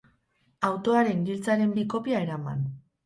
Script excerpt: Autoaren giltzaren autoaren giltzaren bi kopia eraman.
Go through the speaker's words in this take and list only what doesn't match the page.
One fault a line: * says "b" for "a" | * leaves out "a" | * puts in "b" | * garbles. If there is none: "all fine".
* leaves out "autoaren giltzaren"